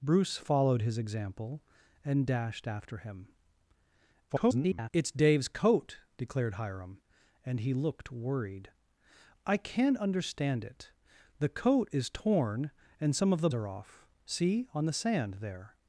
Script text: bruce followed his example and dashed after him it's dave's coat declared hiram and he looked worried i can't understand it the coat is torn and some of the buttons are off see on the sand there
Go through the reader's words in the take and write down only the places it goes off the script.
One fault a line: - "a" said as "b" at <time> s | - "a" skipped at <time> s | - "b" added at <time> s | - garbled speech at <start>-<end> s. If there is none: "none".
- garbled speech at 4.3-4.9 s
- "buttons" skipped at 13.5 s